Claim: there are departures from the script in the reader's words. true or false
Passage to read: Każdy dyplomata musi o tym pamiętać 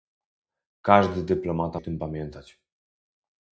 true